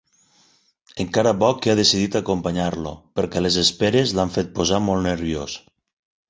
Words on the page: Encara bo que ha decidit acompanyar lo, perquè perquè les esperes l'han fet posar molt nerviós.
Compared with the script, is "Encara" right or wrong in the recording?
right